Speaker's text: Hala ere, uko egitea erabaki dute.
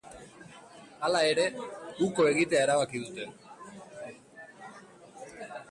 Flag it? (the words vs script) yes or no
no